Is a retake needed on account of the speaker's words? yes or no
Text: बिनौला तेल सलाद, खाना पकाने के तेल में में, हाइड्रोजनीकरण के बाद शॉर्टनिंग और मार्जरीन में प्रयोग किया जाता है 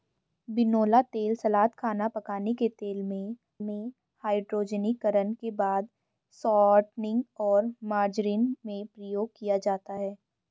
no